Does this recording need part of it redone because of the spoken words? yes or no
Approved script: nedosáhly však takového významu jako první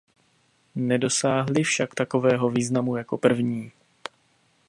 no